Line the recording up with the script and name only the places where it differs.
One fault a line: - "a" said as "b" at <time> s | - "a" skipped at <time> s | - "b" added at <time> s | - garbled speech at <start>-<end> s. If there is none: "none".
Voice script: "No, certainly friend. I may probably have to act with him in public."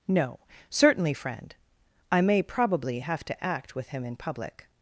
none